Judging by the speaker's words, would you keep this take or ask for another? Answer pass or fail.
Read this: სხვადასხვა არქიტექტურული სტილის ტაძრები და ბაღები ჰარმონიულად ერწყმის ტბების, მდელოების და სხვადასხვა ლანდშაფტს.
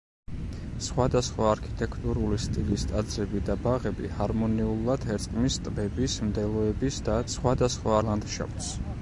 pass